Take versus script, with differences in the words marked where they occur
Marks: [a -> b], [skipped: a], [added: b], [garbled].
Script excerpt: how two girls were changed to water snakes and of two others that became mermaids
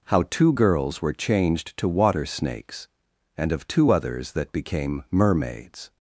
how two girls were changed to water snakes and of two others that became mermaids